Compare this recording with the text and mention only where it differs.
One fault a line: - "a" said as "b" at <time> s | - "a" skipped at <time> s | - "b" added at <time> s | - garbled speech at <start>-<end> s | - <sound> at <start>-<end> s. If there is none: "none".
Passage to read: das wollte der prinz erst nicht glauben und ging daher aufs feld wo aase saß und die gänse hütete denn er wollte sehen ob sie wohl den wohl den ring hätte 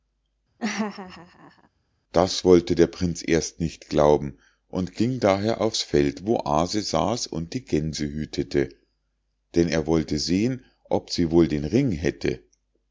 - laugh at 0.6-1.7 s
- "wohl den" skipped at 11.6 s